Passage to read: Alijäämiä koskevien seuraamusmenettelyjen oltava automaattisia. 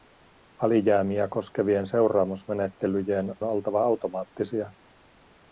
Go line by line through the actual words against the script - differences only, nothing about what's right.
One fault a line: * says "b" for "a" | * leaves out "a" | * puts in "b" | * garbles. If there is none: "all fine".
all fine